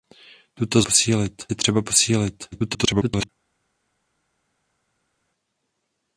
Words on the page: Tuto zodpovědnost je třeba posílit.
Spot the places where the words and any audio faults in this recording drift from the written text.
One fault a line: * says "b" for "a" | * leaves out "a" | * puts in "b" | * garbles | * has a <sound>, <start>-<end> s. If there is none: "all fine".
* says "posílit" for "zodpovědnost"
* garbles